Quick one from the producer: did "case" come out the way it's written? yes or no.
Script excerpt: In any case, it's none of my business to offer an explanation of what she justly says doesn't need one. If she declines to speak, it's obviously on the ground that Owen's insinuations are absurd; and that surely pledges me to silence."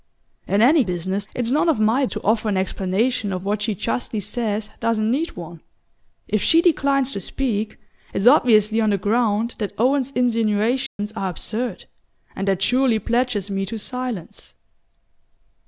no